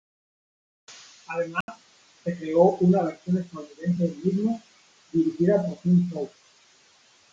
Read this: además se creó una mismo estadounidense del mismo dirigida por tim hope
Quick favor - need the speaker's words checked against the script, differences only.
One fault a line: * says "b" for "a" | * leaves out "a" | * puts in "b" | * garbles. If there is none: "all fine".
* says "versión" for "mismo"